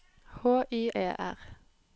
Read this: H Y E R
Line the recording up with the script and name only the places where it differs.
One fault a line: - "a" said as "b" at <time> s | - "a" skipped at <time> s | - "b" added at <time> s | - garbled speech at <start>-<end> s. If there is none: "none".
none